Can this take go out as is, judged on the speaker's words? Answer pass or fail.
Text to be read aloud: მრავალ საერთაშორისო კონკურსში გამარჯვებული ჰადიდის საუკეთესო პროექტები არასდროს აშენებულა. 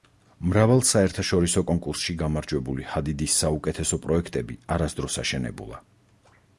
pass